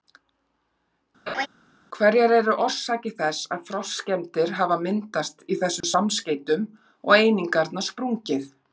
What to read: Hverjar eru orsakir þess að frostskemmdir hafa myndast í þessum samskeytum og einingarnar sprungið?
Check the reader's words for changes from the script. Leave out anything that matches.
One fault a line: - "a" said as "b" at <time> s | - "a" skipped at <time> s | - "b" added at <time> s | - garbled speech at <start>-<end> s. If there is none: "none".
none